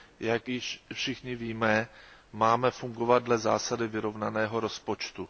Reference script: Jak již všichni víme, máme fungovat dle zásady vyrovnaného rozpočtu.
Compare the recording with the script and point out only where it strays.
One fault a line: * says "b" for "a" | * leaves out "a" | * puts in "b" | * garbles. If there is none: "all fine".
all fine